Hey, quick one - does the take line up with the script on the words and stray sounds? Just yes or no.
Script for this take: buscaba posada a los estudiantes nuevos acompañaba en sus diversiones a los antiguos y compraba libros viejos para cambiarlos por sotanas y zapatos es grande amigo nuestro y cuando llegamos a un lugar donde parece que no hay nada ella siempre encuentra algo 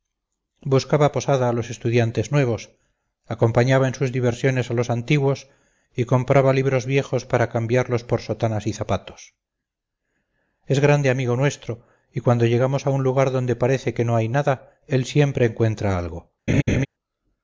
no